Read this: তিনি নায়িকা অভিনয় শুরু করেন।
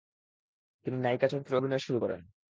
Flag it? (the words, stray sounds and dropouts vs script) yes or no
yes